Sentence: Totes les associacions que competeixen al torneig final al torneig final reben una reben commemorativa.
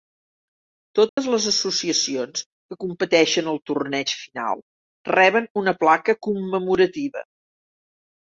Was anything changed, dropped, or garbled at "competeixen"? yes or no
no